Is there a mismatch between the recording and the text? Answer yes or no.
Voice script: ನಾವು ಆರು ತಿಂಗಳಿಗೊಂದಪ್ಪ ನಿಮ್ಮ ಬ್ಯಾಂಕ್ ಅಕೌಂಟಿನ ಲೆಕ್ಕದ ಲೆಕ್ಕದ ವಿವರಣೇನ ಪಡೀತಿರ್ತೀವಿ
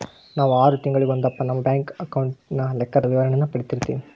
yes